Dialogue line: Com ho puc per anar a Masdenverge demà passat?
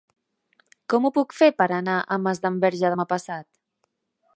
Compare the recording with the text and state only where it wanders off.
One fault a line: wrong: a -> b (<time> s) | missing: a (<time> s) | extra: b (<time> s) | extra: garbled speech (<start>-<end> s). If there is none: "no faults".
extra: fer (1.4 s)